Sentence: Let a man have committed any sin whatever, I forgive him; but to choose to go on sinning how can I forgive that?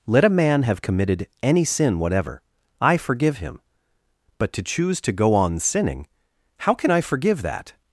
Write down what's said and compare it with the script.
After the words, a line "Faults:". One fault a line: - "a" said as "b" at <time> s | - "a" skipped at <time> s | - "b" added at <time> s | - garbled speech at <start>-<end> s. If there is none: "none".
Let a man have committed any sin whatever, I forgive him; but to choose to go on sinning how can I forgive that?
Faults:
none